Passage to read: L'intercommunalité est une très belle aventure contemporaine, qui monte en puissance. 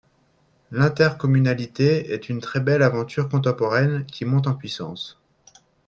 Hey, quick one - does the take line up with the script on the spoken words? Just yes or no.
yes